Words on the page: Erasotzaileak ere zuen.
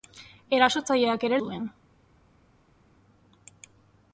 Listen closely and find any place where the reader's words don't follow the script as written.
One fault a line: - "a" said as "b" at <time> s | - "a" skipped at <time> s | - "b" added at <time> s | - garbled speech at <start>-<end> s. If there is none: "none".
none